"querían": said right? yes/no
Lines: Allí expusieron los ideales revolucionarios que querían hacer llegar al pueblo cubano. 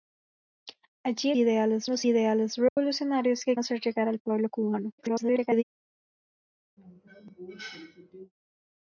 no